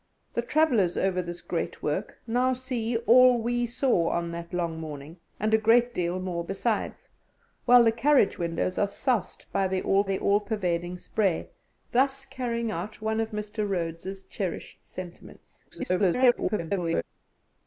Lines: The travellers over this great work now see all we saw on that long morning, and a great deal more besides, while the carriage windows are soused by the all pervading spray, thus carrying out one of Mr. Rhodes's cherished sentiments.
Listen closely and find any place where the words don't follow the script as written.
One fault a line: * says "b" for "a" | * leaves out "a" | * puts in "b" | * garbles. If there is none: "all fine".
* puts in "the all"
* garbles